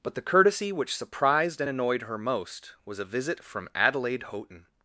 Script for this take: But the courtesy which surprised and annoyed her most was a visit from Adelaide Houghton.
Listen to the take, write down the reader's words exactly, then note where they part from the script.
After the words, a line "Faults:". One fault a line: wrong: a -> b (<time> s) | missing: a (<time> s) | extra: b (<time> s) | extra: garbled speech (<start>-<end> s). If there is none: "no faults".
But the courtesy which surprised and annoyed her most was a visit from Adelaide Houghton.
Faults:
no faults